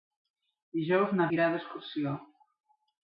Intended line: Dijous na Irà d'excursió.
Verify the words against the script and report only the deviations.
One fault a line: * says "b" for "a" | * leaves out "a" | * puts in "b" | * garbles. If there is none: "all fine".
all fine